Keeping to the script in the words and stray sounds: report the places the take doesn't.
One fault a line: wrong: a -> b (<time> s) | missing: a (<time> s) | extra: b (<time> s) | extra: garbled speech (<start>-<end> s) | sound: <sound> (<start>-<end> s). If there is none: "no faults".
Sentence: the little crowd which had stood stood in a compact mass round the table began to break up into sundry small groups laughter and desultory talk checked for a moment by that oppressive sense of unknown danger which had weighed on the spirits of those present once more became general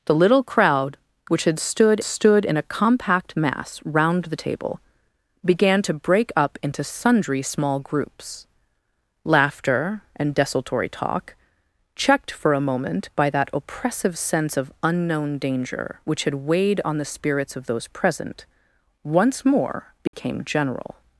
sound: dropout (20.1-20.1 s)